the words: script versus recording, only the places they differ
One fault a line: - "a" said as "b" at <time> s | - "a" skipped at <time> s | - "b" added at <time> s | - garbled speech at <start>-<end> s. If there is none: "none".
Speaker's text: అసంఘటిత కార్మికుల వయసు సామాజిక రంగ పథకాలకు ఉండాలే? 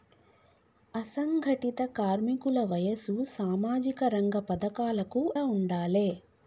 none